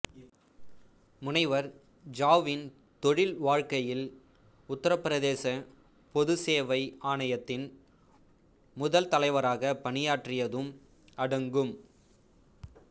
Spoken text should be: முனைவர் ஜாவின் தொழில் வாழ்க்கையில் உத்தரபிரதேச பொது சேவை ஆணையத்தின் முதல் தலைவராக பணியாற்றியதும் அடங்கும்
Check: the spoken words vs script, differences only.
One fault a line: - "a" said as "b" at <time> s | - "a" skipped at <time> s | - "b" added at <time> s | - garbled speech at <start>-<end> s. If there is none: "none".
none